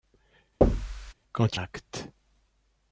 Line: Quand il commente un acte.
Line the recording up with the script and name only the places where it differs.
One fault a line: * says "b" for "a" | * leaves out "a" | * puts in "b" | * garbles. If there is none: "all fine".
* leaves out "il commente un"